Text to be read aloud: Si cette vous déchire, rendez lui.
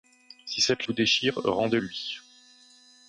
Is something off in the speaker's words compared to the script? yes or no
no